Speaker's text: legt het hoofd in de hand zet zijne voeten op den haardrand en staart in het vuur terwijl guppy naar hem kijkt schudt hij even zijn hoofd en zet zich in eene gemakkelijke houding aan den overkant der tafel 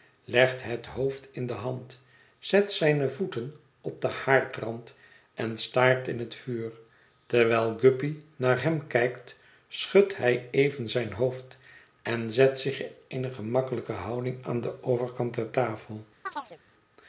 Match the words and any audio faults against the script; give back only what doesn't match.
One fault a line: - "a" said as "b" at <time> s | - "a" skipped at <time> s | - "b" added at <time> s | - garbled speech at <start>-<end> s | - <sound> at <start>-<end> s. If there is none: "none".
- chirp at 16.3-16.6 s